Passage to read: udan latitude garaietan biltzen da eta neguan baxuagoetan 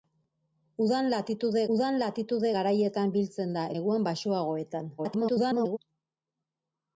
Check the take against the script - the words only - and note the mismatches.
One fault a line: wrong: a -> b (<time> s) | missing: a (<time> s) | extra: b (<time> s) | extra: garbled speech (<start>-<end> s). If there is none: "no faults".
extra: udan latitude (1.7 s)
missing: eta (3.7 s)
extra: garbled speech (5.0-5.8 s)